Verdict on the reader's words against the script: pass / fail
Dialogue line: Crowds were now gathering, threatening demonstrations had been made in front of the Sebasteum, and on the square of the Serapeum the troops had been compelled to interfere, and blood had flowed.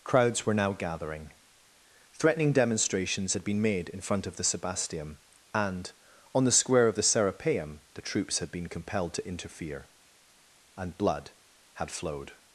pass